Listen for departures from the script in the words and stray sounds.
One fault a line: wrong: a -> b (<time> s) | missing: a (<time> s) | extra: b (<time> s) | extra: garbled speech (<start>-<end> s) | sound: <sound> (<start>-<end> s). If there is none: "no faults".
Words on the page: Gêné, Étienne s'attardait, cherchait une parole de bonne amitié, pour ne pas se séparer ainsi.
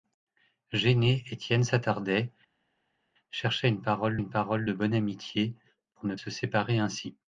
extra: une parole (4.2 s)
missing: pas (6.1 s)